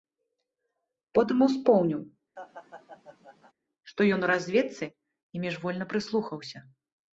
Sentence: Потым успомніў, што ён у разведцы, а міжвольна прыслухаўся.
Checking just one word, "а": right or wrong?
wrong